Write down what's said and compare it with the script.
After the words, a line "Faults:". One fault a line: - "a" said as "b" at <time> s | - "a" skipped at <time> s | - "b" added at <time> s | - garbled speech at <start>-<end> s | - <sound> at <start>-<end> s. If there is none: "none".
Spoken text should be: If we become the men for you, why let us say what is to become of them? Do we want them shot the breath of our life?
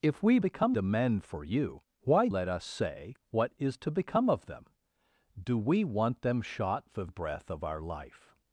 If we become the men for you, why let us say what is to become of them? Do we want them shot the breath of our life?
Faults:
none